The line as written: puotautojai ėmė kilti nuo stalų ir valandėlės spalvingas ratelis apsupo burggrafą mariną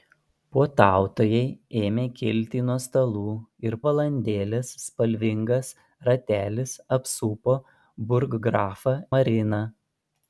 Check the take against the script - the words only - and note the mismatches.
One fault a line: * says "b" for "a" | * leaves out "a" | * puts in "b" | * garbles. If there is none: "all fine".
all fine